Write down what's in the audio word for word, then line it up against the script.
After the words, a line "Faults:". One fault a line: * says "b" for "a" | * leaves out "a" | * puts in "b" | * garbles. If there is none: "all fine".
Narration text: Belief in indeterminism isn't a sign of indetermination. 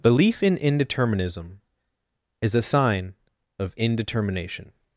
Belief in indeterminism is a sign of indetermination.
Faults:
* says "is" for "isn't"